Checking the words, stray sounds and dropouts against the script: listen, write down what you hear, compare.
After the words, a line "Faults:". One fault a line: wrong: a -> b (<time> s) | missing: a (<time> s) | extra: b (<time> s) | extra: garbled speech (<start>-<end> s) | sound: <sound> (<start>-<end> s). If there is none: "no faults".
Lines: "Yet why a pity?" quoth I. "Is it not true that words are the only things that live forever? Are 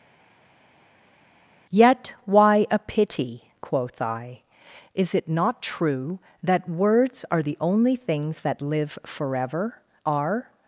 "Yet why a pity?" quoth I. "Is it not true that words are the only things that live forever? Are
Faults:
no faults